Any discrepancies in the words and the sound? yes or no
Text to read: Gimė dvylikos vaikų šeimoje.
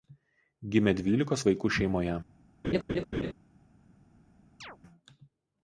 yes